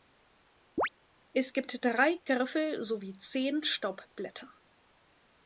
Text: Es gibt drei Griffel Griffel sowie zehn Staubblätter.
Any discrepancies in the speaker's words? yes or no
yes